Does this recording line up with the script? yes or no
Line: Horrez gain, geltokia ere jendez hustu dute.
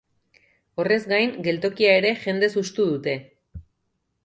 yes